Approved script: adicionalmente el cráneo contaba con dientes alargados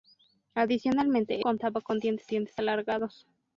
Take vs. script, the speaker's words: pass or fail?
fail